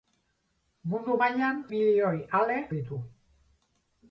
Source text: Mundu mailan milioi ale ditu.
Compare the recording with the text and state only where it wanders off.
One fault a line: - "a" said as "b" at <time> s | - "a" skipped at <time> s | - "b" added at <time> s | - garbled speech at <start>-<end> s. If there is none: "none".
none